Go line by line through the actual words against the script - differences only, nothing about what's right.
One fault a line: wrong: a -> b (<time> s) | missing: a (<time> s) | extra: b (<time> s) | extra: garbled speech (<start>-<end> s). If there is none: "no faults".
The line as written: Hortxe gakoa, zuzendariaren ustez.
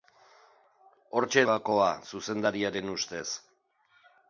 no faults